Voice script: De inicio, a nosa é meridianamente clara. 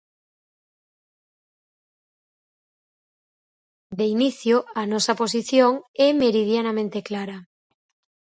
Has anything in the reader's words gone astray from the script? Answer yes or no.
yes